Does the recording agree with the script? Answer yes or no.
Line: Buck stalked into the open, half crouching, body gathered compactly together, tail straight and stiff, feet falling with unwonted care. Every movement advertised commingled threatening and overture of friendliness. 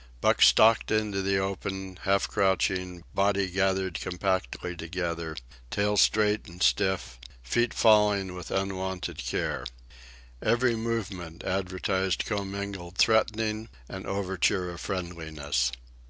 yes